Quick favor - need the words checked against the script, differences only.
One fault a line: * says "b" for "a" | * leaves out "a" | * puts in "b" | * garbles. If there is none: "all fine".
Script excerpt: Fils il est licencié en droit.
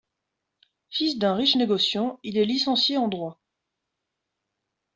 * puts in "d'un riche négociant"